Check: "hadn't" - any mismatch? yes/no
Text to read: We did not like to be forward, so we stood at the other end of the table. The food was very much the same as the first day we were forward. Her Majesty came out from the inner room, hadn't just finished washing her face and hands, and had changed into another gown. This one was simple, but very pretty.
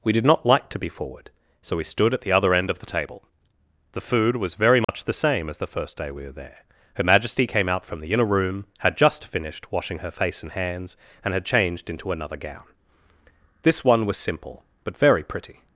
yes